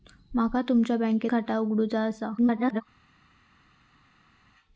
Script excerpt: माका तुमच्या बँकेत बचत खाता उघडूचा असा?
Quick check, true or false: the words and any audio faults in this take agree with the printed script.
false